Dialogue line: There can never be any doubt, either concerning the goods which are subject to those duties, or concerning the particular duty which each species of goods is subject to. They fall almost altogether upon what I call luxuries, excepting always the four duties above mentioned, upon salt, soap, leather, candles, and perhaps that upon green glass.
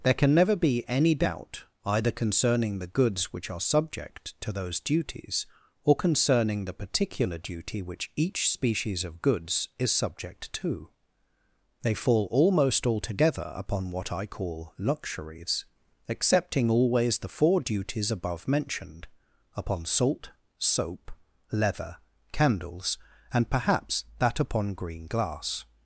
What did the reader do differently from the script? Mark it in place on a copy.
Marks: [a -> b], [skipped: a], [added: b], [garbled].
There can never be any doubt, either concerning the goods which are subject to those duties, or concerning the particular duty which each species of goods is subject to. They fall almost altogether upon what I call luxuries, excepting always the four duties above mentioned, upon salt, soap, leather, candles, and perhaps that upon green glass.